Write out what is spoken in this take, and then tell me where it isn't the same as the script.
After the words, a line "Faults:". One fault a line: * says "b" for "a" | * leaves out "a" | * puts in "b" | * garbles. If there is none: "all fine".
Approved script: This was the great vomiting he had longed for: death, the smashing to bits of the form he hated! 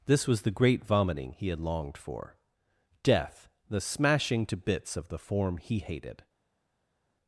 This was the great vomiting he had longed for: death, the smashing to bits of the form he hated!
Faults:
all fine